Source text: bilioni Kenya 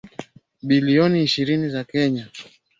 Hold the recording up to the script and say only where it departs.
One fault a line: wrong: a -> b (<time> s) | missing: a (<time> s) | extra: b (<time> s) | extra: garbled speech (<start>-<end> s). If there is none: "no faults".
extra: ishirini za (1.2 s)